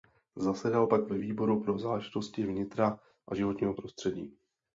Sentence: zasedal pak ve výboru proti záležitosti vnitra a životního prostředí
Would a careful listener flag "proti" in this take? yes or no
yes